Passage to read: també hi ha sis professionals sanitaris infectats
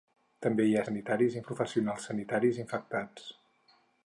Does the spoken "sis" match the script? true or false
false